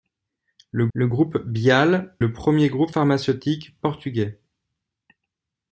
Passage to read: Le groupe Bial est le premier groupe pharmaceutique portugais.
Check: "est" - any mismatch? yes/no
yes